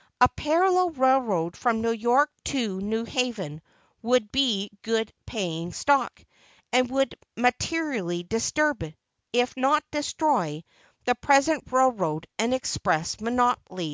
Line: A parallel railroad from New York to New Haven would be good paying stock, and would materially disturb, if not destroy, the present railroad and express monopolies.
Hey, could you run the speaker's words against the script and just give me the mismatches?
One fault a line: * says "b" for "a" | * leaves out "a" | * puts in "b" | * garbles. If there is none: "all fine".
all fine